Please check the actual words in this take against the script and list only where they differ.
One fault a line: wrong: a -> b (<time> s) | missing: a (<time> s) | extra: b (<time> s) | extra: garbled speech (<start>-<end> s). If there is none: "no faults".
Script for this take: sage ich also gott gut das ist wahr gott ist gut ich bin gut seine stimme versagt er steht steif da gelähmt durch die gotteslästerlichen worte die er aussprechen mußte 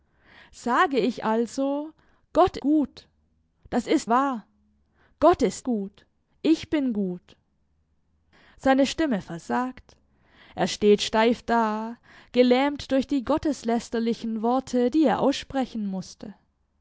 no faults